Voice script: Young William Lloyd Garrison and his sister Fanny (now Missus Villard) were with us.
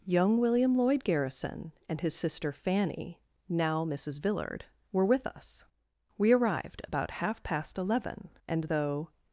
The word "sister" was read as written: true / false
true